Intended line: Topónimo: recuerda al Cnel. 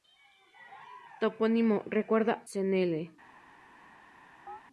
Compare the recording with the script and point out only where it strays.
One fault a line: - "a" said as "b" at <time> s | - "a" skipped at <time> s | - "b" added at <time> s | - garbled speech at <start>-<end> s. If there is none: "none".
- "al" skipped at 2.4 s